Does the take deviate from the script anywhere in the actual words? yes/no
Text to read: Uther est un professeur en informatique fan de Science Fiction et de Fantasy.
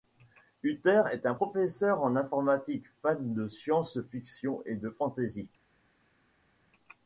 no